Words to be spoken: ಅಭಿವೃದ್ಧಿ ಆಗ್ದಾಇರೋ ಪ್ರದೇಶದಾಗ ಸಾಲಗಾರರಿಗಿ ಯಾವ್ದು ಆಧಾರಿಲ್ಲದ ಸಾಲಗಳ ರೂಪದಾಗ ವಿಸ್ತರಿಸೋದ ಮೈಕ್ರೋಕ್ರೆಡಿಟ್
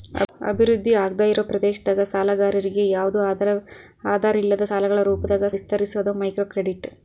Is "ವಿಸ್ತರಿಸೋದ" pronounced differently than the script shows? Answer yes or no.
no